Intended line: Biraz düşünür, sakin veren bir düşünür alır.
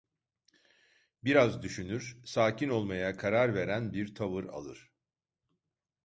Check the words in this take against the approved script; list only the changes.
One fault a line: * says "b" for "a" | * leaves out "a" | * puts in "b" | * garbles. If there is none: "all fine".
* puts in "olmaya karar"
* says "tavır" for "düşünür"